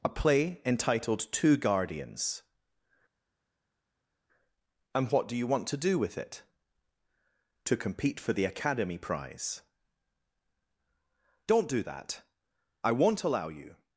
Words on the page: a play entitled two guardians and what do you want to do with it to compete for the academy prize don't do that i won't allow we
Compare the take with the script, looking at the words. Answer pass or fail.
fail